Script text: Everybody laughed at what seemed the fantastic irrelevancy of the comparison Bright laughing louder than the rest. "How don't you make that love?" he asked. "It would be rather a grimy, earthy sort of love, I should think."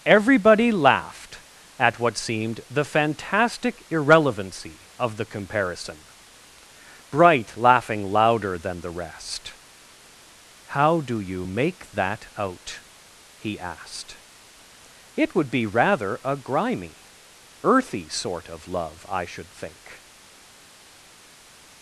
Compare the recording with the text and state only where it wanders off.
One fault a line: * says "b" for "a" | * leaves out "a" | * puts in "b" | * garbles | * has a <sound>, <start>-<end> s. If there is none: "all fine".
* says "do" for "don't"
* says "out" for "love"